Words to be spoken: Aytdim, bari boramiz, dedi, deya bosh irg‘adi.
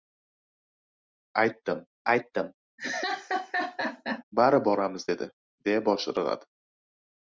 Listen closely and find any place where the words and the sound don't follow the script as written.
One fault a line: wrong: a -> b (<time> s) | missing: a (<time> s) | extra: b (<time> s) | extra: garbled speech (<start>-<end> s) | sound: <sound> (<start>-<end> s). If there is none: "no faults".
extra: aytdim (2.1 s)
sound: laugh (2.8-4.2 s)